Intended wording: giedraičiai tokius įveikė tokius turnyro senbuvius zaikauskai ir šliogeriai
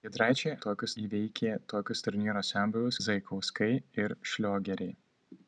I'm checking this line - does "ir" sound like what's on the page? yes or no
yes